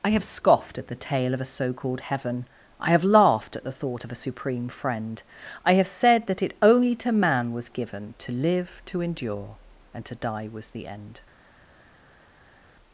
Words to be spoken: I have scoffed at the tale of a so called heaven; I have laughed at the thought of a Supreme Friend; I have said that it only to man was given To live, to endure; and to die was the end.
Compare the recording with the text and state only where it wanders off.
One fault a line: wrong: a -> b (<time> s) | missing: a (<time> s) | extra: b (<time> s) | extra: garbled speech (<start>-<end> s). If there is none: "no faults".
no faults